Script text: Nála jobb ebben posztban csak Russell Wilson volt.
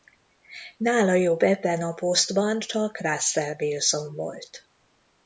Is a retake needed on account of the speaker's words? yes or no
yes